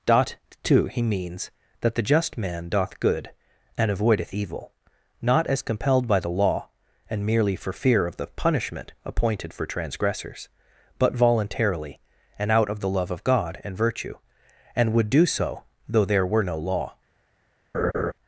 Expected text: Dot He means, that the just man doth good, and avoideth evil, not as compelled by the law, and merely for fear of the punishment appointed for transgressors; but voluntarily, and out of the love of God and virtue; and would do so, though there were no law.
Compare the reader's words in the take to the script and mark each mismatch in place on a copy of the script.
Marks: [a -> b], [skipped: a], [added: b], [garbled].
Dot [added: two] He means, that the just man doth good, and avoideth evil, not as compelled by the law, and merely for fear of the punishment appointed for transgressors; but voluntarily, and out of the love of God and virtue; and would do so, though there were no law.